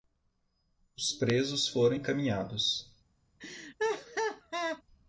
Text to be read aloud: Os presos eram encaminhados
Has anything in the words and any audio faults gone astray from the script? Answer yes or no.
yes